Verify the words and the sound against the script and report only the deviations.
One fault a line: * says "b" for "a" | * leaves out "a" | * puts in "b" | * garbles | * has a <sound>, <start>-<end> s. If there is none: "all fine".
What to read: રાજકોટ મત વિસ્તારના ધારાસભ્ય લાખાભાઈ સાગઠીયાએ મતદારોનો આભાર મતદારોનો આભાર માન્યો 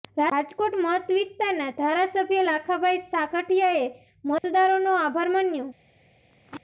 * has a dropout, 4.4-4.4 s
* leaves out "મતદારોનો આભાર"
* has a throat clearing, 6.3-6.6 s